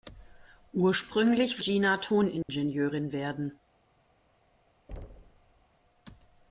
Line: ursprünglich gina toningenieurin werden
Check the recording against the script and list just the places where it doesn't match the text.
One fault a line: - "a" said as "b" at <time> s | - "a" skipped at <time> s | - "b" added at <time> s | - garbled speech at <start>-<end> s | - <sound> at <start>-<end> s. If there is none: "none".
- dropout at 2.4-2.5 s
- thud at 4.9-5.7 s